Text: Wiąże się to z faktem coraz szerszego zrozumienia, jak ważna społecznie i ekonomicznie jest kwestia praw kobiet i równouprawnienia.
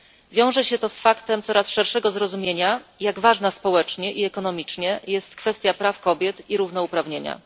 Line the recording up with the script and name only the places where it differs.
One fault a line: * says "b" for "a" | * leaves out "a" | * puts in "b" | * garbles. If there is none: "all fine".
all fine